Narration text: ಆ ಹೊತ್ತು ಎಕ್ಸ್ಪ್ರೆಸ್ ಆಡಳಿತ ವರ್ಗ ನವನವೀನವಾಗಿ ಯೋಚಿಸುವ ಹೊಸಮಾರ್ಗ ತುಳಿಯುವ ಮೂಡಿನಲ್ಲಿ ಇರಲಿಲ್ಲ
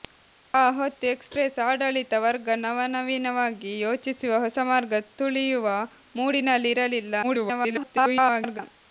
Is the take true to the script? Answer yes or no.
no